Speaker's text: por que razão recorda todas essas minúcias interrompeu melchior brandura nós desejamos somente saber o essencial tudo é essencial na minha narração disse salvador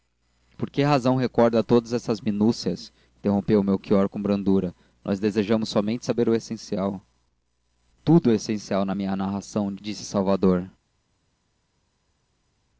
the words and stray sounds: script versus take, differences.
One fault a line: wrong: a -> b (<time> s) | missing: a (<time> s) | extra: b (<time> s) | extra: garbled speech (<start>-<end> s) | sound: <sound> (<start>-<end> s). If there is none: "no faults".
extra: com (4.1 s)